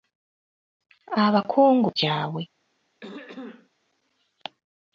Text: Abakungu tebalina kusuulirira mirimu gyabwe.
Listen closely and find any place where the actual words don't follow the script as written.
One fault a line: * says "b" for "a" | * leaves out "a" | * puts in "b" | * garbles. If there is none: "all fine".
* leaves out "tebalina kusuulirira mirimu"